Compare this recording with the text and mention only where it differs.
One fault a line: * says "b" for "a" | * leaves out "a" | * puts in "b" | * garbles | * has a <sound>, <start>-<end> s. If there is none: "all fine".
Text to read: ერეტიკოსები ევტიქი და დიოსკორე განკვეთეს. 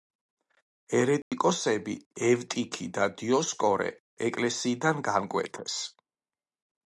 * has a dropout, 1.2-1.3 s
* puts in "ეკლესიიდან"